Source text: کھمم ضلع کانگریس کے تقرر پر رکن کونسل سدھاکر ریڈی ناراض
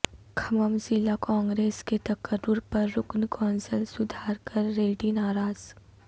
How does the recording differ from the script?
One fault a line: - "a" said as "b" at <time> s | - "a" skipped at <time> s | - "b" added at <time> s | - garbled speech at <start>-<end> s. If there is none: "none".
none